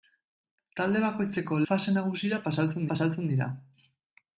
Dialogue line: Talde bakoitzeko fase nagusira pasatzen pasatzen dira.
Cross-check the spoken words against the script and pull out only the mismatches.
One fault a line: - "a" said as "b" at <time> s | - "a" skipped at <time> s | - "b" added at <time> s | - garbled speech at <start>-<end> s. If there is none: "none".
none